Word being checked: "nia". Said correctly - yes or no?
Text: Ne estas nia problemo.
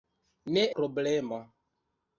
no